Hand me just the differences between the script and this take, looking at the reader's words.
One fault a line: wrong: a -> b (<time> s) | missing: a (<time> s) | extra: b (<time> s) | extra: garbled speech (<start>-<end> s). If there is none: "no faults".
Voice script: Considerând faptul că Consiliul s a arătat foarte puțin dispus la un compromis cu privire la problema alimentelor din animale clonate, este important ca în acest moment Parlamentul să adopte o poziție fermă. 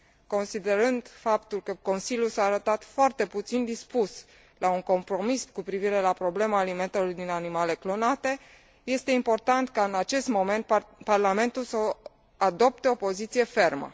no faults